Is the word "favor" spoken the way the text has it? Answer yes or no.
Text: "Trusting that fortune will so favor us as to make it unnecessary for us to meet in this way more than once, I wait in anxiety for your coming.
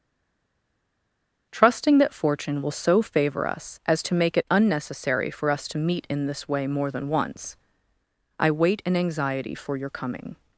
yes